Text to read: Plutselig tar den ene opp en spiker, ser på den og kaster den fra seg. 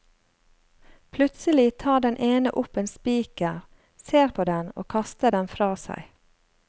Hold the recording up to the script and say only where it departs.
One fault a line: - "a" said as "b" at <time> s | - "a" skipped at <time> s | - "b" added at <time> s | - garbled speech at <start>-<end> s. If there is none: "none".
none